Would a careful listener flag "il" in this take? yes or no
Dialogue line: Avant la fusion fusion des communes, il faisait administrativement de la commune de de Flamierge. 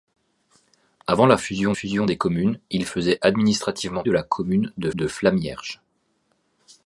no